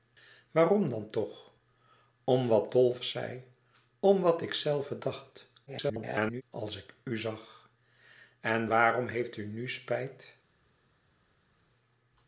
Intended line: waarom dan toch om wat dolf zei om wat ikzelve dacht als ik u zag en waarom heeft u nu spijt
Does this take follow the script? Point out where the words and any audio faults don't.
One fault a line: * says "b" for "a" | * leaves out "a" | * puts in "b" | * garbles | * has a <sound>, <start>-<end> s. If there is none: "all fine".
* garbles